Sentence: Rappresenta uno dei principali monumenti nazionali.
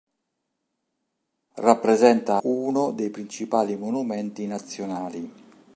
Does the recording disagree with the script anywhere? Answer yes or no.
no